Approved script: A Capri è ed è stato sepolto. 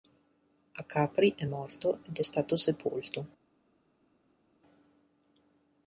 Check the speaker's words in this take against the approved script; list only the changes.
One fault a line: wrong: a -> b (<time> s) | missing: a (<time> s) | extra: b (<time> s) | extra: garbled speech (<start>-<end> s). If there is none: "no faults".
extra: morto (1.4 s)